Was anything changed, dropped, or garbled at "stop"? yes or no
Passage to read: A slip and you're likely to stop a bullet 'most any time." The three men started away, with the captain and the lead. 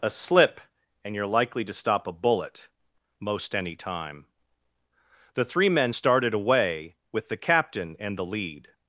no